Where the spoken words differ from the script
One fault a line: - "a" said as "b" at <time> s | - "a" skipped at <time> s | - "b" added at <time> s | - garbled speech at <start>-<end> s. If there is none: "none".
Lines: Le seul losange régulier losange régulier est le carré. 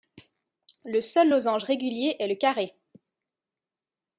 - "losange régulier" skipped at 2.2 s